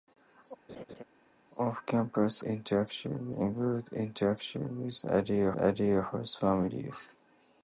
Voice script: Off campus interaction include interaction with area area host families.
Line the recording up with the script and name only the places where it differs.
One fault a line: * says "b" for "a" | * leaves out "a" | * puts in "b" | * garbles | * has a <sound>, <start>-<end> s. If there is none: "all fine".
* has a laugh, 0.7-1.0 s